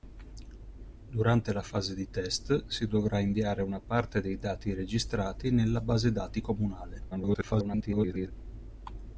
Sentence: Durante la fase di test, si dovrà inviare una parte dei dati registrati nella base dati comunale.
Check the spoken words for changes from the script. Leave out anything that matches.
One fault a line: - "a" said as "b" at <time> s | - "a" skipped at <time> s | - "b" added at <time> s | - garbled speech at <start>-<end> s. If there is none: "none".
- garbled speech at 7.1-8.3 s